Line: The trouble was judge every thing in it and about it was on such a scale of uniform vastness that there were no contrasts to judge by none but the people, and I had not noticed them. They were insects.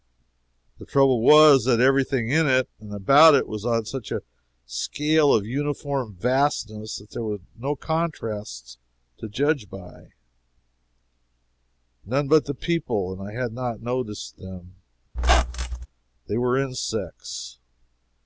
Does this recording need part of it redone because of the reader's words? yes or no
yes